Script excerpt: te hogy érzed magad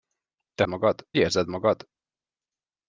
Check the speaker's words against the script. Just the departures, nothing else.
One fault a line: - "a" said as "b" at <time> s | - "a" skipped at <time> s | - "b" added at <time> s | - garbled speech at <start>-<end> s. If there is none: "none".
- "hogy" said as "magad" at 0.7 s